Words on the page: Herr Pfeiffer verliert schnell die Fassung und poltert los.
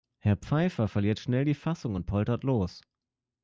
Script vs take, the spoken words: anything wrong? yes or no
no